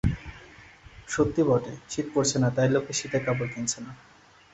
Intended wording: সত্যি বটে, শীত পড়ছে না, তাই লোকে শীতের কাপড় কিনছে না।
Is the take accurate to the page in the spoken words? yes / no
yes